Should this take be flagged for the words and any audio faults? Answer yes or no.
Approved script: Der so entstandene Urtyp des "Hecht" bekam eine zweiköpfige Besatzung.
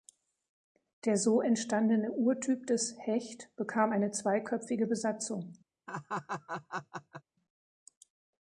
yes